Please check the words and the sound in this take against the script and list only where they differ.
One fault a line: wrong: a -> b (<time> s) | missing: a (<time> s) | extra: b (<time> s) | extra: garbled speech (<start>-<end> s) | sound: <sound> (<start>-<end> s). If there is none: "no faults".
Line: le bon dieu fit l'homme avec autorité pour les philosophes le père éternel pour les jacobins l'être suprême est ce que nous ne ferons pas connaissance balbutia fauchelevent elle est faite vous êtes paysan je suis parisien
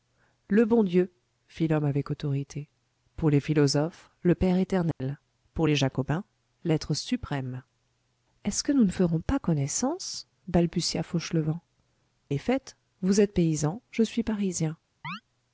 sound: dropout (4.9-5.0 s)
missing: elle (11.6 s)
sound: chirp (15.0-15.2 s)